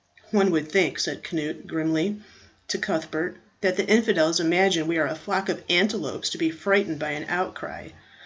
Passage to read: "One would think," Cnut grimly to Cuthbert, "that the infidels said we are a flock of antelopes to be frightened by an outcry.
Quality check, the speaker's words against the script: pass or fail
fail